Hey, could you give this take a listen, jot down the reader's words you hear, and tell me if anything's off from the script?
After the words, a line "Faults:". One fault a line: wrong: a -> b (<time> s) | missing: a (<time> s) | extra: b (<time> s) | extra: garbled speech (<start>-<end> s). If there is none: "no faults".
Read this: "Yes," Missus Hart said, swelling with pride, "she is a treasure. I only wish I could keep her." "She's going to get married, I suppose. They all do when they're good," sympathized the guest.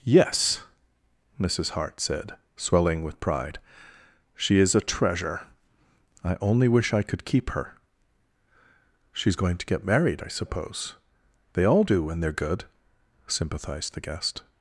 "Yes," Missus Hart said, swelling with pride, "she is a treasure. I only wish I could keep her." "She's going to get married, I suppose. They all do when they're good," sympathized the guest.
Faults:
no faults